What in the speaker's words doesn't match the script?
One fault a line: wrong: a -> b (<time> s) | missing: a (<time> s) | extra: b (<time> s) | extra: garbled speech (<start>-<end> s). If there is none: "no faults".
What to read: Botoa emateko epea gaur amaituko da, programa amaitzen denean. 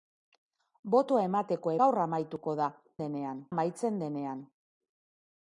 missing: epea (1.7 s)
wrong: programa -> denean (3.0 s)